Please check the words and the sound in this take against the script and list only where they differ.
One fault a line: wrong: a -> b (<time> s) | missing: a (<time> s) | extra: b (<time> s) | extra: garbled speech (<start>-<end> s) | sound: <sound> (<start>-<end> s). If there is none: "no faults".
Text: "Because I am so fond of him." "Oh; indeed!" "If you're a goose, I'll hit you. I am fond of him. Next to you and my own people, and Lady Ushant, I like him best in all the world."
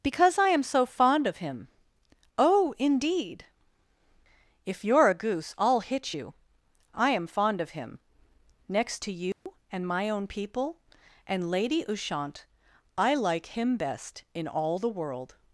sound: dropout (9.3-9.5 s)